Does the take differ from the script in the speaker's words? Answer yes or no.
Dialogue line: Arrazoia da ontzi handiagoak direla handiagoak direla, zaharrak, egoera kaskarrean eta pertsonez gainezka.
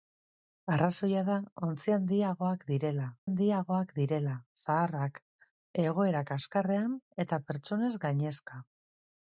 no